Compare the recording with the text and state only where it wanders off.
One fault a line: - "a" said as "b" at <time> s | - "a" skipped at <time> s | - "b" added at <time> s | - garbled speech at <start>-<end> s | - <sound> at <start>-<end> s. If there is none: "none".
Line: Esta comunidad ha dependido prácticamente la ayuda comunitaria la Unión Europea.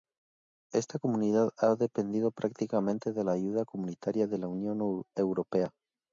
- "de" added at 3.1 s
- "de" added at 4.2 s